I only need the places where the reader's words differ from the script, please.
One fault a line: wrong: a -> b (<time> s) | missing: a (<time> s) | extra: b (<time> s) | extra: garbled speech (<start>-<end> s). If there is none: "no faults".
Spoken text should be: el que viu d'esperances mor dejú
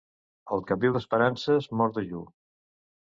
no faults